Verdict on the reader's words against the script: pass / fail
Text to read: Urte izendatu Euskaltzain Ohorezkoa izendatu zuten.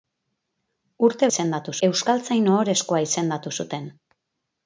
pass